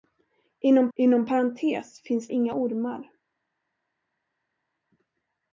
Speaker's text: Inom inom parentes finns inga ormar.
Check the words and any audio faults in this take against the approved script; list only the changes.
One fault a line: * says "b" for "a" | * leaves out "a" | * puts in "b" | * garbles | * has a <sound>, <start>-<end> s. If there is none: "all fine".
all fine